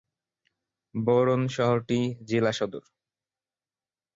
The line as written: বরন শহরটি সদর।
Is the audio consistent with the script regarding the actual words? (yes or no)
no